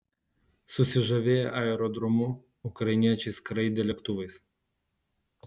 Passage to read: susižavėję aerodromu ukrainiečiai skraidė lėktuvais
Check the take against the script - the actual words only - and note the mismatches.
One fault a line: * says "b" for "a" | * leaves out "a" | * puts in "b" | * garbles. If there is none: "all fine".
all fine